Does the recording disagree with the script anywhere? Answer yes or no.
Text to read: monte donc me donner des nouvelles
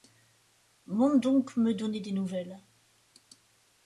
no